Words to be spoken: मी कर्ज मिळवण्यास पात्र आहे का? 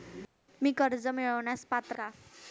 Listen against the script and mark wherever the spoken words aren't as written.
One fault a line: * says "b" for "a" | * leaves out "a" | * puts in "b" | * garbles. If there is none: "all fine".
* leaves out "आहे"